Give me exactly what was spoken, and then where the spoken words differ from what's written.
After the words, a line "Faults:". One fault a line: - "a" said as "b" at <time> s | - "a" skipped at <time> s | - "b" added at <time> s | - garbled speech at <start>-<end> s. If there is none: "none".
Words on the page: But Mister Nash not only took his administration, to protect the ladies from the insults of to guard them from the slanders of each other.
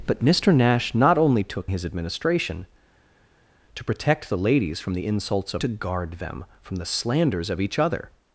But Mister Nash not only took his administration, to protect the ladies from the insults of to guard them from the slanders of each other.
Faults:
none